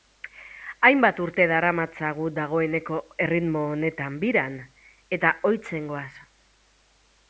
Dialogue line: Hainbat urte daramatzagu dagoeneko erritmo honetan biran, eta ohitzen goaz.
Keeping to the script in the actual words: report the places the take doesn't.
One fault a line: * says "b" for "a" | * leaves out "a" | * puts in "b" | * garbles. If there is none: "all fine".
all fine